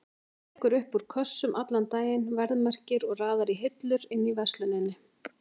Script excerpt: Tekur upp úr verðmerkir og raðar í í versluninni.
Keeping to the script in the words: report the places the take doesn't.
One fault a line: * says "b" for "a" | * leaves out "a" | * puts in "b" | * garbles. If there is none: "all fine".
* puts in "kössum allan daginn"
* puts in "hillur inni"